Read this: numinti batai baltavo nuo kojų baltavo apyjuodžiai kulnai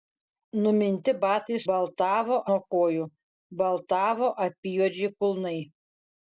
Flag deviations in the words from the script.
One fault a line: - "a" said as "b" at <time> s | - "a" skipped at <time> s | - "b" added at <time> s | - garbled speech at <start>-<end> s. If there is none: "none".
none